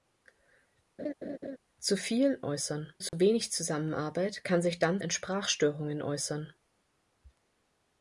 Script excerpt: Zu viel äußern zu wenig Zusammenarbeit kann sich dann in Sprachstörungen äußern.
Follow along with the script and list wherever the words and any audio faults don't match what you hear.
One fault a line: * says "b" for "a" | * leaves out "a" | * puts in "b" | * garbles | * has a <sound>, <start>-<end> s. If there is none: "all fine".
* has a laugh, 1.0-1.6 s
* has a dropout, 3.1-3.1 s